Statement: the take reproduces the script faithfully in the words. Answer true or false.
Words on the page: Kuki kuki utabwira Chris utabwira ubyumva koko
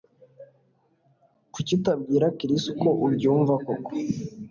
false